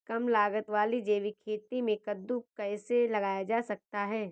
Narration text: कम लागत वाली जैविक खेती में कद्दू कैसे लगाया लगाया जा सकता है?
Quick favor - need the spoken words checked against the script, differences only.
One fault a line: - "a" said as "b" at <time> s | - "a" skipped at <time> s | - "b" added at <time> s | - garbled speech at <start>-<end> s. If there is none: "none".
- "लगाया" skipped at 3.4 s